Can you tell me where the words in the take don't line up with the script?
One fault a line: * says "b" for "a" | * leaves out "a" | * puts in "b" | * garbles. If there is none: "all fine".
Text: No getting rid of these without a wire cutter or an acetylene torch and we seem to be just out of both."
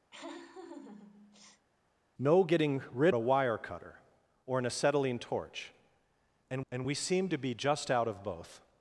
* leaves out "of these without"
* puts in "and"